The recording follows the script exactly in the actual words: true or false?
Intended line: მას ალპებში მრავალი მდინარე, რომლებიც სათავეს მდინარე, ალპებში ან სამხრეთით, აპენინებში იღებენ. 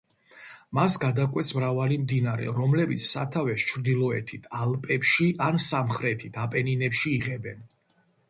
false